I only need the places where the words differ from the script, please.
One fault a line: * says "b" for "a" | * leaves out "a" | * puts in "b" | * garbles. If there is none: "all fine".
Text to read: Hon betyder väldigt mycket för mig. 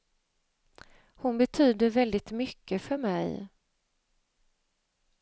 all fine